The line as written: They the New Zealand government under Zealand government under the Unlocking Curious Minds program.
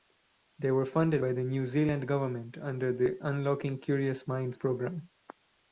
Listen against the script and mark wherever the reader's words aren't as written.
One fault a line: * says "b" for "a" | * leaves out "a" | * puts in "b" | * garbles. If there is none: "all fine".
* says "were funded by the New" for "the New Zealand government under"